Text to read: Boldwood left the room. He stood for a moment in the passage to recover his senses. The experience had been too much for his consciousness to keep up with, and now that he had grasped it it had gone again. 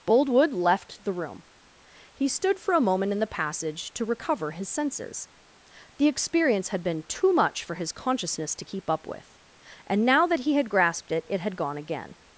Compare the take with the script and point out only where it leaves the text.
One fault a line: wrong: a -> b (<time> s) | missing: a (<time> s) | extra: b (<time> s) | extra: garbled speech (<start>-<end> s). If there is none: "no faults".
no faults